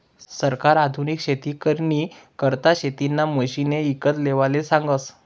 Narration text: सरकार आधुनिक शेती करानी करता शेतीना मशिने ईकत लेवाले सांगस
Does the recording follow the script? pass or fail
pass